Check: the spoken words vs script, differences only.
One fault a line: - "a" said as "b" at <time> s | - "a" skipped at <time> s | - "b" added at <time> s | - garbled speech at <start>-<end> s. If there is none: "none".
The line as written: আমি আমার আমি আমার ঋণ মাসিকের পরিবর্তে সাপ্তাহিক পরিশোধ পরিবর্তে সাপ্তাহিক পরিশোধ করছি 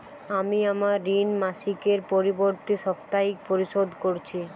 - "আমি আমার" skipped at 1.0 s
- "পরিবর্তে সাপ্তাহিক পরিশোধ" skipped at 3.9 s